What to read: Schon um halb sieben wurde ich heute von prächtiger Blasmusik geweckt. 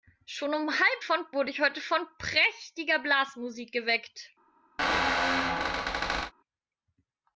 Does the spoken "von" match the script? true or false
true